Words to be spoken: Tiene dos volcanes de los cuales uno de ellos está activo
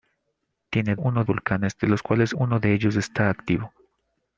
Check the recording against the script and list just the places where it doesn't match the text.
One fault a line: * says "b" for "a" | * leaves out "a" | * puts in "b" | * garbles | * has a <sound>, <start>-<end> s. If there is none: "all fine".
* says "uno" for "dos"